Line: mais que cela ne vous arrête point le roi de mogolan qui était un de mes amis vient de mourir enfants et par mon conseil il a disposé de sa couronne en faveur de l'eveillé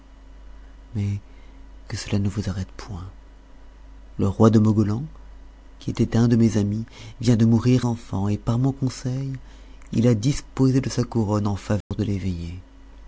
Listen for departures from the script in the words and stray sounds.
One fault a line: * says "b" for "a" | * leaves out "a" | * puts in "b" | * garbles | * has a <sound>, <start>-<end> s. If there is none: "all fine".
* has a dropout, 11.8-11.9 s